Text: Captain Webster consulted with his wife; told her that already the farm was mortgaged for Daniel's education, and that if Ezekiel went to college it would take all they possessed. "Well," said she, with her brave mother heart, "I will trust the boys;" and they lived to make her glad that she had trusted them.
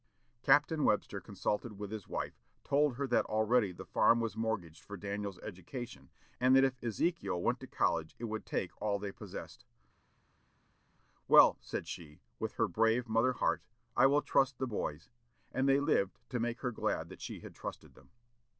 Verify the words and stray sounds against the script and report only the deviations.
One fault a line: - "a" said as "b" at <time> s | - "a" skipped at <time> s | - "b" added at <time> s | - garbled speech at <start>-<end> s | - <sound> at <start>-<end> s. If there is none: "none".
none